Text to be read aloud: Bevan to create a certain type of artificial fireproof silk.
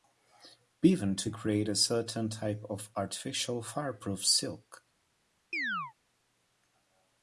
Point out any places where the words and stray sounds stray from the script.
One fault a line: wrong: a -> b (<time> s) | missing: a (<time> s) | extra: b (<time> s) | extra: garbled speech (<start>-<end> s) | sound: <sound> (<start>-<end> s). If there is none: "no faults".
sound: chirp (5.5-5.9 s)